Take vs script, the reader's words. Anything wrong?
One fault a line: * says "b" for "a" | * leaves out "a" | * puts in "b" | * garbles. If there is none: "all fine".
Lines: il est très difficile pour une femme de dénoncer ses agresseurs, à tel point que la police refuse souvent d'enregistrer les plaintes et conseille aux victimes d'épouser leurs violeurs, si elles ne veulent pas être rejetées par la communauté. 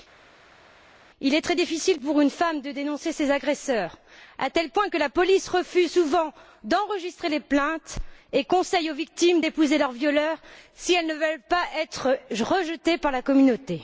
all fine